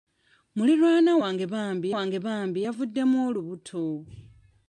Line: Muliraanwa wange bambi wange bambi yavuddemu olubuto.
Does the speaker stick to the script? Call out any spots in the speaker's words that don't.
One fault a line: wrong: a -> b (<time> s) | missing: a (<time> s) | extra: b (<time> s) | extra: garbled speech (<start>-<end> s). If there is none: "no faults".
no faults